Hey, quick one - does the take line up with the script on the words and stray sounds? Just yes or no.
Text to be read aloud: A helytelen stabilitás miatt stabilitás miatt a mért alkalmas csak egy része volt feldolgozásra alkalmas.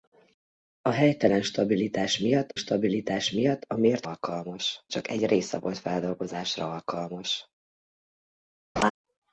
no